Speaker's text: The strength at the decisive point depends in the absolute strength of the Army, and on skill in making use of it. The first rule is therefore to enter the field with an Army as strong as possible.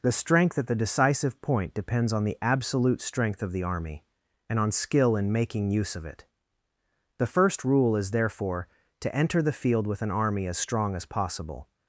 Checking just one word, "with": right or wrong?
right